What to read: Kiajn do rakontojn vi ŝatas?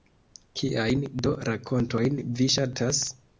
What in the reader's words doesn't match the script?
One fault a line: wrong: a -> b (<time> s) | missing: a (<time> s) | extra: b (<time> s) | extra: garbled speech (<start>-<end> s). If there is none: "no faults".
no faults